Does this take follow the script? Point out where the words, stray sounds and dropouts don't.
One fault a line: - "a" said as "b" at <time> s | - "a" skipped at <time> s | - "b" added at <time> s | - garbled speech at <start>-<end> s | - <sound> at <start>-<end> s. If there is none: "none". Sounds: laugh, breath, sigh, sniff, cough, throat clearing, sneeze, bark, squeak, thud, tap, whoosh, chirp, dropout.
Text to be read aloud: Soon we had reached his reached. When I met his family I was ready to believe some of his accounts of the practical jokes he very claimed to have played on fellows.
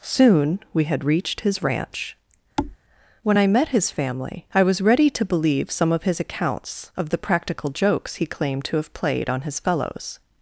- "reached" said as "ranch" at 1.6 s
- thud at 2.6-2.8 s
- "very" skipped at 8.2 s
- "his" added at 9.4 s